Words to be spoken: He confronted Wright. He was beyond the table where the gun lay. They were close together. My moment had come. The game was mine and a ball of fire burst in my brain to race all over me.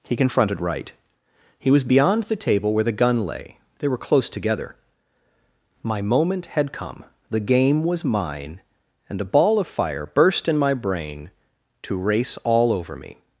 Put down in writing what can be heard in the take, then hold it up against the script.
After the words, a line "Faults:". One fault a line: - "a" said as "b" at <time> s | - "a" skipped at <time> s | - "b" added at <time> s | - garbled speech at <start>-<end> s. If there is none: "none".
He confronted Wright. He was beyond the table where the gun lay. They were close together. My moment had come. The game was mine and a ball of fire burst in my brain to race all over me.
Faults:
none